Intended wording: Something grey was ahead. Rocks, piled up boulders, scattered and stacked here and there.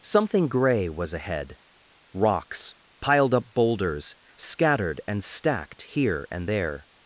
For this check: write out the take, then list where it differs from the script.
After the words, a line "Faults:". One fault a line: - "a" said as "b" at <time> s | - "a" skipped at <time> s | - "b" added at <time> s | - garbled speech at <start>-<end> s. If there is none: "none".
Something grey was ahead. Rocks, piled up boulders, scattered and stacked here and there.
Faults:
none